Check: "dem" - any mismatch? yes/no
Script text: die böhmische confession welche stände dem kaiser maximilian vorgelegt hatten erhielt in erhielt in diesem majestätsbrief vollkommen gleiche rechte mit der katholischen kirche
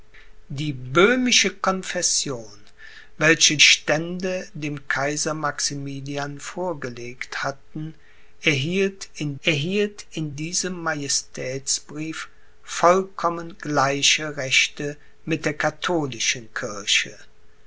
no